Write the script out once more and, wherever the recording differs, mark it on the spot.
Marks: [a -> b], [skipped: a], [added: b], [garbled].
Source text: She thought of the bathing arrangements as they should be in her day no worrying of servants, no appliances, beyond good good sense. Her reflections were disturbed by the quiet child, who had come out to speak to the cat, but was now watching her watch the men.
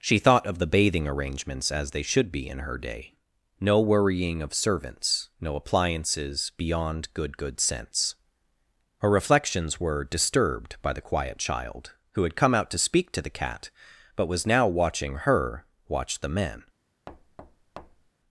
She thought of the bathing arrangements as they should be in her day no worrying of servants, no appliances, beyond good good sense. Her reflections were disturbed by the quiet child, who had come out to speak to the cat, but was now watching her watch the men.